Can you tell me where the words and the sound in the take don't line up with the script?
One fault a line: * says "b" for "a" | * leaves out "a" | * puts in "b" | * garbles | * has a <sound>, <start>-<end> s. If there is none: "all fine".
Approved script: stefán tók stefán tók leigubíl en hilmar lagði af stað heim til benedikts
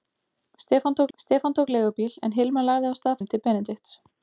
all fine